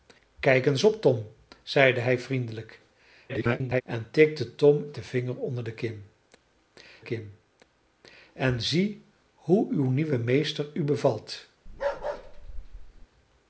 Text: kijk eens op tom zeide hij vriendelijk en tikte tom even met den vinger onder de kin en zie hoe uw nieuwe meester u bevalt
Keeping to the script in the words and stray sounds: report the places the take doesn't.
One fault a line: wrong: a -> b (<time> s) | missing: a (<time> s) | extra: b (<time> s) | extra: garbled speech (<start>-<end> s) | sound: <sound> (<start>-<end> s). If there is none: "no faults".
extra: garbled speech (3.3-3.8 s)
missing: even met (4.9 s)
extra: kin (7.0 s)
sound: bark (11.7-13.1 s)